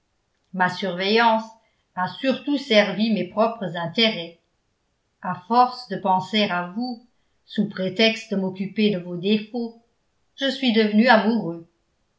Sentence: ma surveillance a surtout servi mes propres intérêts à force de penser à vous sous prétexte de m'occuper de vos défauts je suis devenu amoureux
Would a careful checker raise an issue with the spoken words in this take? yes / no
no